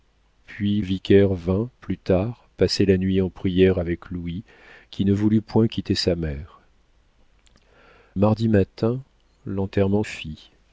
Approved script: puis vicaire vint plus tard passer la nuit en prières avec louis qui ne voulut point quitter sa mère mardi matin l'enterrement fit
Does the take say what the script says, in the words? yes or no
yes